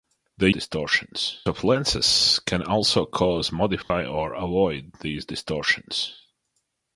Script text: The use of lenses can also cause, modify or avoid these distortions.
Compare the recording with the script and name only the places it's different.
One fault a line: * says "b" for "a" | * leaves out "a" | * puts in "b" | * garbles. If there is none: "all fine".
* says "distortions" for "use"